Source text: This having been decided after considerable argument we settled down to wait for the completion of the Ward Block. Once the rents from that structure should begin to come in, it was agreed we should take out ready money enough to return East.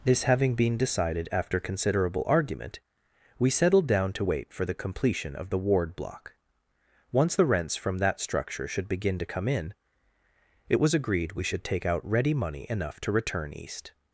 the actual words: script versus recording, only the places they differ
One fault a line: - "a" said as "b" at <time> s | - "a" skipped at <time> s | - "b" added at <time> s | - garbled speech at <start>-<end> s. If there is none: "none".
none